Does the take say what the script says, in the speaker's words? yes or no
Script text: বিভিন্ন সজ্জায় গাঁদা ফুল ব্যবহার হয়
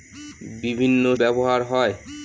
no